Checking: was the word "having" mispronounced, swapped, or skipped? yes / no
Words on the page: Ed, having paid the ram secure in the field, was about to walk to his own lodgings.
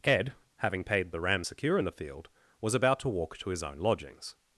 no